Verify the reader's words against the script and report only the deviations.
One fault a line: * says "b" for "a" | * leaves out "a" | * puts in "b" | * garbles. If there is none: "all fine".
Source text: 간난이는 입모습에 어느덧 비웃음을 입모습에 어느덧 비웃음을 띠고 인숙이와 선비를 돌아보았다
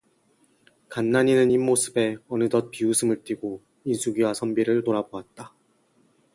* leaves out "입모습에 어느덧 비웃음을"